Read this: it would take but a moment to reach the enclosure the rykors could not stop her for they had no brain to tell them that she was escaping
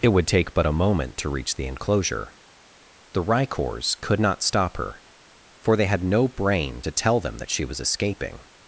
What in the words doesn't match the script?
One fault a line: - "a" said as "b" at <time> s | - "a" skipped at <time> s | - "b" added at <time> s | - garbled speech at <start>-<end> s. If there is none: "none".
none